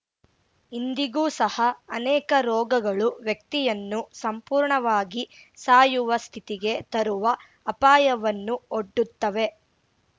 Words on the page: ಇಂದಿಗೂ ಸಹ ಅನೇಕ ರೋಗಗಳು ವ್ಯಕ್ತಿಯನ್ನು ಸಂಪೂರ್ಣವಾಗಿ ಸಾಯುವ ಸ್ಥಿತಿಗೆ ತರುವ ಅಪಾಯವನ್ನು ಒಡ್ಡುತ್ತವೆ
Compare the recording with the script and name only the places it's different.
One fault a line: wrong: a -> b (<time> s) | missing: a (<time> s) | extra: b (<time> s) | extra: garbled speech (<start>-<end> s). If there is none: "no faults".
no faults